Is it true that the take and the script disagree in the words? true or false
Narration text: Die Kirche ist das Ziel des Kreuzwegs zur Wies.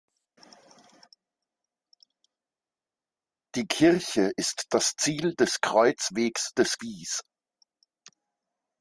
true